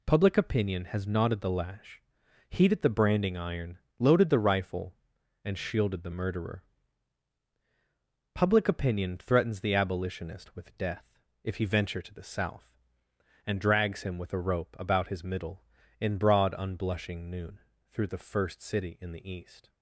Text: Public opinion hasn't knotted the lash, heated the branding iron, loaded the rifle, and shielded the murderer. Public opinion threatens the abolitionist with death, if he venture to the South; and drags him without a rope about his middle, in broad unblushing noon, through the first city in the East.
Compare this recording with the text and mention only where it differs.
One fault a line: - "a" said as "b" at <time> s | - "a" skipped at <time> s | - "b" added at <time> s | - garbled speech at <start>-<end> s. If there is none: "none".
- "hasn't" said as "has" at 0.8 s
- "without" said as "with" at 14.2 s